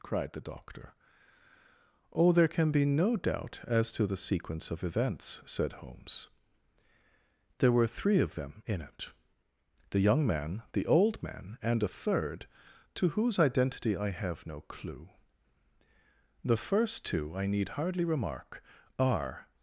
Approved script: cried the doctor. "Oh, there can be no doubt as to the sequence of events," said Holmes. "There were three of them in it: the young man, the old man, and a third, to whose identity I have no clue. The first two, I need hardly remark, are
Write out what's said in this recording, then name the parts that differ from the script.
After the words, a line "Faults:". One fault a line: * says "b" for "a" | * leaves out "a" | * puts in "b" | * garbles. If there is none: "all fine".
cried the doctor. "Oh, there can be no doubt as to the sequence of events," said Holmes. "There were three of them in it: the young man, the old man, and a third, to whose identity I have no clue. The first two, I need hardly remark, are
Faults:
all fine